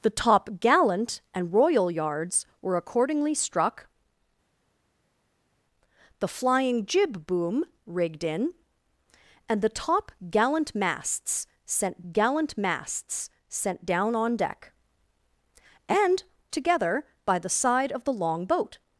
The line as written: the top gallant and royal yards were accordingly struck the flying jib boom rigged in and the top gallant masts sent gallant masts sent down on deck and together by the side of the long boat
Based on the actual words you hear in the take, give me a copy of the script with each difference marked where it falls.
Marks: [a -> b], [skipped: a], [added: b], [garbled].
the top gallant and royal yards were accordingly struck the flying jib boom rigged in and the top gallant masts sent gallant masts sent down on deck and together by the side of the long boat